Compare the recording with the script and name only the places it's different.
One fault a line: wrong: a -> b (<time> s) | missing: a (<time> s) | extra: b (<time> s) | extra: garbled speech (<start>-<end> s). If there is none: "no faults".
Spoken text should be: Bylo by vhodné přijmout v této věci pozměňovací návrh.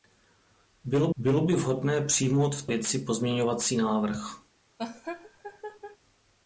extra: bylo (1.2 s)
missing: této (2.7 s)